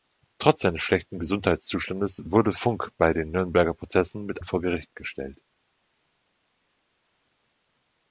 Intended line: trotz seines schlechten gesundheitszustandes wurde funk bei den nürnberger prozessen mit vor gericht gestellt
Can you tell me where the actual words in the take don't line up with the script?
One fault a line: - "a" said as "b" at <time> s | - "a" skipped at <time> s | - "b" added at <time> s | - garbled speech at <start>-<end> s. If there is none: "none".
none